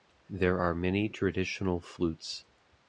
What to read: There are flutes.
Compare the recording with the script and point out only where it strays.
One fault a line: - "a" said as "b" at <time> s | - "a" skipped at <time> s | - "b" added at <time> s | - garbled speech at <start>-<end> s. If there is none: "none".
- "many traditional" added at 0.7 s